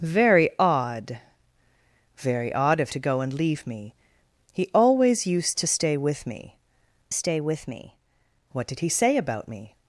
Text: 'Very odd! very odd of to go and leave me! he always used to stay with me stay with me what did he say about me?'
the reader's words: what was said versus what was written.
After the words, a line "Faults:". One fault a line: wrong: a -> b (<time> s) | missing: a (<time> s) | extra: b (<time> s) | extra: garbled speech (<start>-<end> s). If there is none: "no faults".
'Very odd! very odd of to go and leave me! he always used to stay with me stay with me what did he say about me?'
Faults:
no faults